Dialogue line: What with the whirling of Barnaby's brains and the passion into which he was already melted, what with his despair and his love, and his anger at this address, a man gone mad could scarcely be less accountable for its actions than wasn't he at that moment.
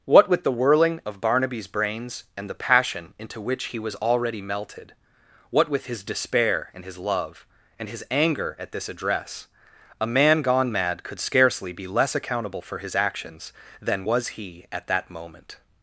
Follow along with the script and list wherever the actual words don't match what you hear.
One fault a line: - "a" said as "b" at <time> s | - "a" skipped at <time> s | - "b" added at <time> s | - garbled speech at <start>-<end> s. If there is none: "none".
- "its" said as "his" at 12.8 s
- "wasn't" said as "was" at 14.0 s